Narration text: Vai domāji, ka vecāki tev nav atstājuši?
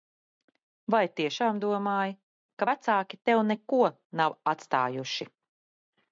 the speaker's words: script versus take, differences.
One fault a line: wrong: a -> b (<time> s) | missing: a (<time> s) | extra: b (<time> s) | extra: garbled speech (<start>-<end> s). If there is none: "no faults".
extra: tiešām (1.2 s)
extra: neko (3.5 s)